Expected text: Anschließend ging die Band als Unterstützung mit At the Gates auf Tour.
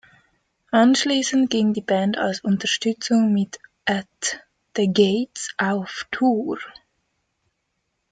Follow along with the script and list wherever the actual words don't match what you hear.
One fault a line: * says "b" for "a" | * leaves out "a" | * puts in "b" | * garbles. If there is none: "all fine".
all fine